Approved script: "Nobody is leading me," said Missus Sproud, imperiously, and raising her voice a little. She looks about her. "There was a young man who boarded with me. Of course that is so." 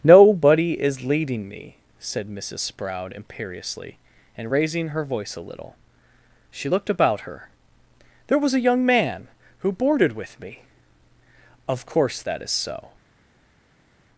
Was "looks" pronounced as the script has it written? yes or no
no